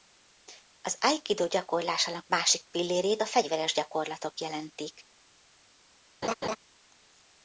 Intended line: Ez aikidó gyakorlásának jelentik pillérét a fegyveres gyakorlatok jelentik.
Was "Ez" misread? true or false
true